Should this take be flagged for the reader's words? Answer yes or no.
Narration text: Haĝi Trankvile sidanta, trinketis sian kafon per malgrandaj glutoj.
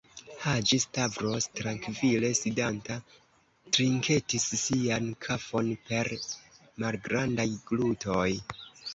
yes